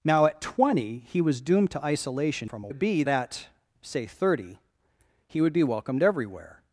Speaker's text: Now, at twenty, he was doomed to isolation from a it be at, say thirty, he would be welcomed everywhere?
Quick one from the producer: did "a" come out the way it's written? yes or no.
yes